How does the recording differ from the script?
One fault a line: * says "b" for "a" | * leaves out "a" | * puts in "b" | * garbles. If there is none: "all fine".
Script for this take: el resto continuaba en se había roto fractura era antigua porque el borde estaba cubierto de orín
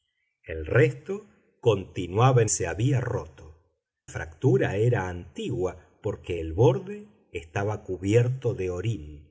all fine